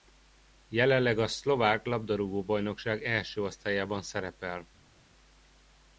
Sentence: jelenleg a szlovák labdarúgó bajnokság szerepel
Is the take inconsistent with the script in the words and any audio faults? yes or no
yes